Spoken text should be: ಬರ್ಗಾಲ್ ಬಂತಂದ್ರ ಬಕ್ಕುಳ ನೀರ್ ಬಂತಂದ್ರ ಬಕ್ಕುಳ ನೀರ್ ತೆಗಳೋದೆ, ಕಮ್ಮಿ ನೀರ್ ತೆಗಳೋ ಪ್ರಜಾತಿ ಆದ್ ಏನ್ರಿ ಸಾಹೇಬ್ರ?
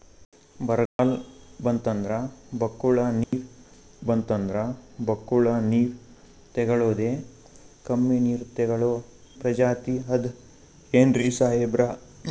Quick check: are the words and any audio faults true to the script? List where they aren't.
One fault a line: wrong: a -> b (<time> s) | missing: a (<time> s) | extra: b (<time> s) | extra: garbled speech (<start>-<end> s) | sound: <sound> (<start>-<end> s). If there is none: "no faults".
sound: dropout (0.9-1.0 s)
sound: dropout (3.2-3.3 s)